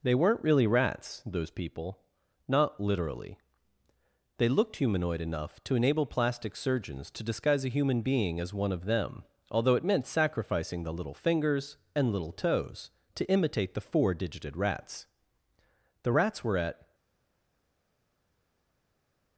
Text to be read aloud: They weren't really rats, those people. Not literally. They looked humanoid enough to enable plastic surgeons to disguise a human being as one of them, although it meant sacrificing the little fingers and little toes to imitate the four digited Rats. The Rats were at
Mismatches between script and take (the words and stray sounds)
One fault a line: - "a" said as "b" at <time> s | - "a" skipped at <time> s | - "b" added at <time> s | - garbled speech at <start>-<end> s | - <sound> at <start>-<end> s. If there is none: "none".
none